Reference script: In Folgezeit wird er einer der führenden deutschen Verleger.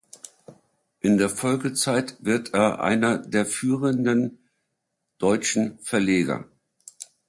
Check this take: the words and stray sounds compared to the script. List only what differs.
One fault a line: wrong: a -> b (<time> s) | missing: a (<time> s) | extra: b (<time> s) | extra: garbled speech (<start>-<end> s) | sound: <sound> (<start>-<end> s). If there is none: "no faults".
extra: der (1.2 s)